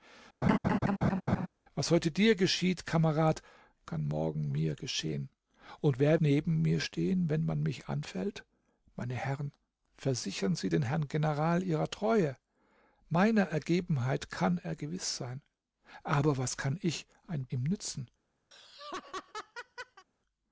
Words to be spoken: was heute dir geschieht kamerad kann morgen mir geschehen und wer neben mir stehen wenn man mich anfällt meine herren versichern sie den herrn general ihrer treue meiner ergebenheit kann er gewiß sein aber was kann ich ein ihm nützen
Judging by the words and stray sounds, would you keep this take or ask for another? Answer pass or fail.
fail